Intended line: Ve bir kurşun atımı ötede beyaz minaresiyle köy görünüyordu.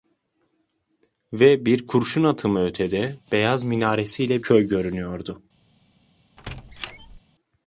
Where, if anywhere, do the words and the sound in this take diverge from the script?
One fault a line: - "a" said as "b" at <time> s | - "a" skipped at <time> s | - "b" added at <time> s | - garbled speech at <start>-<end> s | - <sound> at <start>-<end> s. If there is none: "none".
- squeak at 6.4-7.2 s